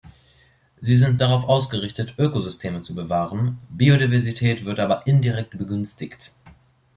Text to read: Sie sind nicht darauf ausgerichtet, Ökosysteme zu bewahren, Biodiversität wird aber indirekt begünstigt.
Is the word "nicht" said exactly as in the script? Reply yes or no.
no